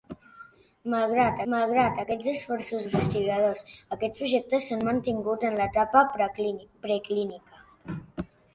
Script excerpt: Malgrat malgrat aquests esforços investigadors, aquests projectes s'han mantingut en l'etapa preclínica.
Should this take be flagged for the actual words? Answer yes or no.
no